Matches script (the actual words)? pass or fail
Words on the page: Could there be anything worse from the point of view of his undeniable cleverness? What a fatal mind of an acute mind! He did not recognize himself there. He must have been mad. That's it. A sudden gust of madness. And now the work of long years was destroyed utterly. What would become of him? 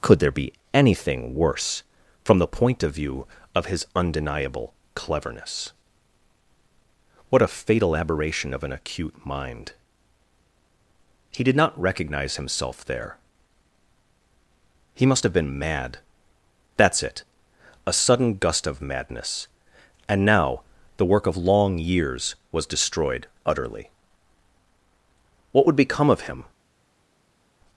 fail